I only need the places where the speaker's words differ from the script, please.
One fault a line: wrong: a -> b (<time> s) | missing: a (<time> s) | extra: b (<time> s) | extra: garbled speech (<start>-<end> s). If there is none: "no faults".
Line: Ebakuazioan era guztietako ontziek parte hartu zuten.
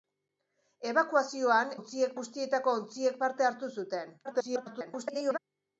wrong: era -> ontziek (1.8 s)
extra: garbled speech (4.2-5.4 s)